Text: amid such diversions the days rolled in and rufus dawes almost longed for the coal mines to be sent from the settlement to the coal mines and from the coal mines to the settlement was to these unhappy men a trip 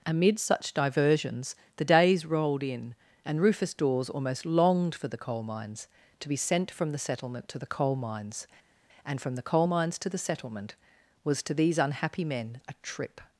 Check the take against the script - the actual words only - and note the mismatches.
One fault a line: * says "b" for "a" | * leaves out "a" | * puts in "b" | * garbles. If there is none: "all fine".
all fine